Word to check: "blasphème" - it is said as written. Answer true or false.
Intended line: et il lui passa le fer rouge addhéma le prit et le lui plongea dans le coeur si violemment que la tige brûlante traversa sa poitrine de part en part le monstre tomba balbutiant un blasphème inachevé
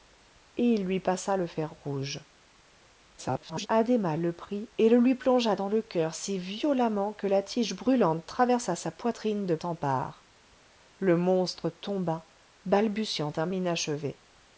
false